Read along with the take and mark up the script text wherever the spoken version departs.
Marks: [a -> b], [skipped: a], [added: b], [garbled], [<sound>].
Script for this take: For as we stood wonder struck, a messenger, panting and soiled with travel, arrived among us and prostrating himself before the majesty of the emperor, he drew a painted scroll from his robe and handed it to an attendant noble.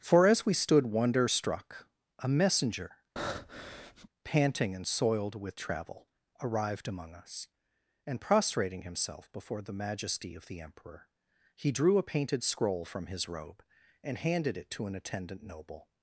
For as we stood wonder struck, a messenger, [breath] panting and soiled with travel, arrived among us and prostrating himself before the majesty of the emperor, he drew a painted scroll from his robe and handed it to an attendant noble.